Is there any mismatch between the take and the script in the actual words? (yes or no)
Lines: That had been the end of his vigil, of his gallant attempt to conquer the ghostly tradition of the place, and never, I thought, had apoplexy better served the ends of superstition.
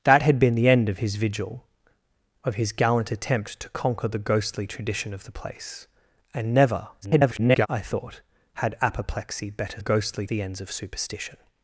yes